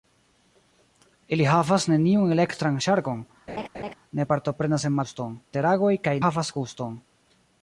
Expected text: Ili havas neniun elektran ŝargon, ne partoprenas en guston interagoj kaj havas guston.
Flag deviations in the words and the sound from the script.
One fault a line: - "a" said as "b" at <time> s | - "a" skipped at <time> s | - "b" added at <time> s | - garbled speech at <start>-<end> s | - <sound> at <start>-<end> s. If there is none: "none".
- laugh at 3.5-3.9 s